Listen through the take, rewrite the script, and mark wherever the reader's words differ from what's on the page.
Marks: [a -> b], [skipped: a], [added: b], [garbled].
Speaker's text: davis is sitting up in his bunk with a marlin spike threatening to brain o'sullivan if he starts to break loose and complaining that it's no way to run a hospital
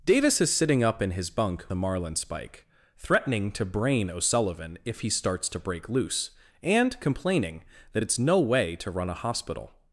davis is sitting up in his bunk [skipped: with] a marlin spike threatening to brain o'sullivan if he starts to break loose and complaining that it's no way to run a hospital